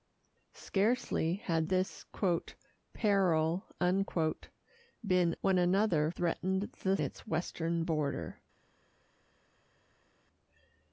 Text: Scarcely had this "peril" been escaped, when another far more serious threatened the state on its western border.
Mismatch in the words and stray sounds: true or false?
true